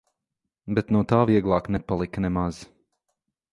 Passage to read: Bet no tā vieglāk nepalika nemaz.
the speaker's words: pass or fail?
pass